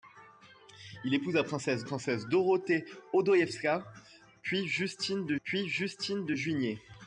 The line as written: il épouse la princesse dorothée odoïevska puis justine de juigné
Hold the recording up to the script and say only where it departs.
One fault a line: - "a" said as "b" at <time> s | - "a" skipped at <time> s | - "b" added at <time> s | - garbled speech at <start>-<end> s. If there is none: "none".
- "princesse" added at 1.8 s
- "puis justine de" added at 5.4 s